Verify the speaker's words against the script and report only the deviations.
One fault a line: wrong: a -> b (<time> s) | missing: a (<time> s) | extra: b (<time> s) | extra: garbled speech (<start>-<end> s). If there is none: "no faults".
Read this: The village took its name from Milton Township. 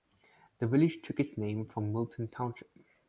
no faults